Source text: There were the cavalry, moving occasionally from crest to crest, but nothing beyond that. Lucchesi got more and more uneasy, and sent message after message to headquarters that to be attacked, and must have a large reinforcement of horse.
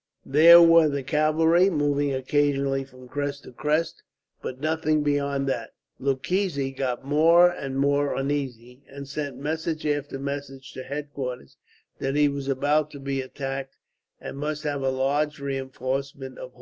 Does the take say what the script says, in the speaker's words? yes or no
no